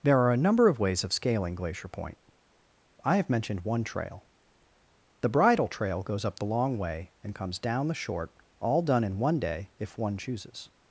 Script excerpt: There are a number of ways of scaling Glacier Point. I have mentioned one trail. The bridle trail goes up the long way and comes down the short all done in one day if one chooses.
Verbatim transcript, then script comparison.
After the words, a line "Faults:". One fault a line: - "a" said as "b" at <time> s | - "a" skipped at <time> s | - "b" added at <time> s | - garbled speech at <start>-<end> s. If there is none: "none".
There are a number of ways of scaling Glacier Point. I have mentioned one trail. The bridle trail goes up the long way and comes down the short all done in one day if one chooses.
Faults:
none